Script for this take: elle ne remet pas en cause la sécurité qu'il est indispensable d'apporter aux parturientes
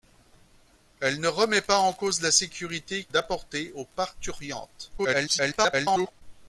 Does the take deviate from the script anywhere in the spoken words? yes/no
yes